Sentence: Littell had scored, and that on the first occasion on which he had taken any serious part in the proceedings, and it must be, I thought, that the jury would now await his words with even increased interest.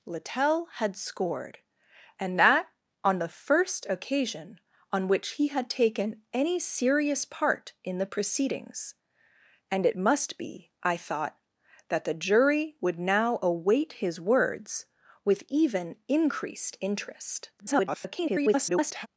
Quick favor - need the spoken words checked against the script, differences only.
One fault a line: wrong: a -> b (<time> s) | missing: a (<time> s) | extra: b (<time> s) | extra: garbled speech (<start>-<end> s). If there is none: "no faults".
extra: garbled speech (17.6-19.1 s)